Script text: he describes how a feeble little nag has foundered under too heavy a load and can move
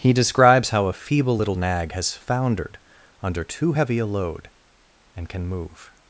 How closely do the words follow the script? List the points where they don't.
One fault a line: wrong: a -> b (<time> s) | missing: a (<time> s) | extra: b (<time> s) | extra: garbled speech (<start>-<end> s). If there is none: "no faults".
no faults